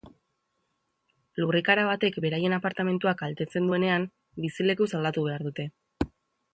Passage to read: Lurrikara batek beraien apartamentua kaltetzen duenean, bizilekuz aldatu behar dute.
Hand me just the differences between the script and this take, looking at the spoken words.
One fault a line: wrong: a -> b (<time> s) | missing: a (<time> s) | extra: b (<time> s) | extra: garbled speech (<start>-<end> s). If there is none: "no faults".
no faults